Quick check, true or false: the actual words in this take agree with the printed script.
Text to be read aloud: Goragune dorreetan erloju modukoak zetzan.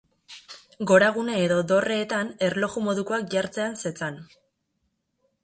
false